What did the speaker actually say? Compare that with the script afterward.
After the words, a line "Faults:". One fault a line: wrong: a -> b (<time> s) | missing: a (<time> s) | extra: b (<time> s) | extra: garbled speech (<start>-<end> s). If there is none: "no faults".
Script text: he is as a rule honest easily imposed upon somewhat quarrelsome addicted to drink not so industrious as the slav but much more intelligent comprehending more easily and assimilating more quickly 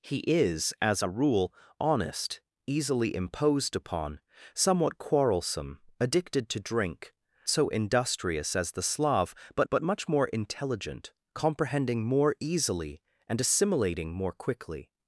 he is as a rule honest easily imposed upon somewhat quarrelsome addicted to drink so industrious as the slav but but much more intelligent comprehending more easily and assimilating more quickly
Faults:
missing: not (7.1 s)
extra: but (9.7 s)